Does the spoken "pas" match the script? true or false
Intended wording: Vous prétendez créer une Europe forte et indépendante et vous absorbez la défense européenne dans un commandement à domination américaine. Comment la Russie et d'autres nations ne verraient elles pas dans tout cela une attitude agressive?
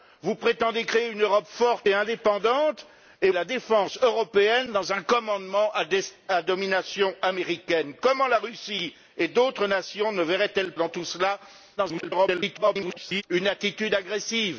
false